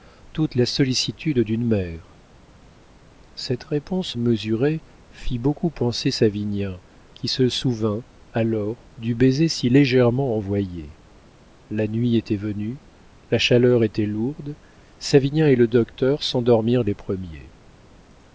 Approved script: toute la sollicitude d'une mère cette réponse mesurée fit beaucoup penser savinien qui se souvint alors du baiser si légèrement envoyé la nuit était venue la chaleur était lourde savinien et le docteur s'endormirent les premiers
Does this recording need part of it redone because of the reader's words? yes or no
no